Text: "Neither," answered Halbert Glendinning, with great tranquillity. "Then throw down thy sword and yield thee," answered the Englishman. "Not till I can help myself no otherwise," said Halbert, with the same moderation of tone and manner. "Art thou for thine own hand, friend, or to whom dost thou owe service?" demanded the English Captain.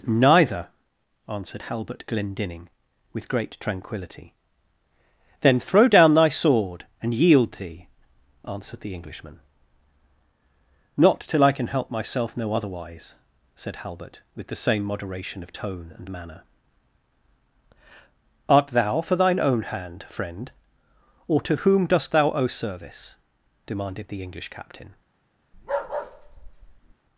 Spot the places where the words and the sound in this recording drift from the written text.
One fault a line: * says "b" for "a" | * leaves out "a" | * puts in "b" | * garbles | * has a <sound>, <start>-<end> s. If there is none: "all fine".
* has a bark, 25.5-26.9 s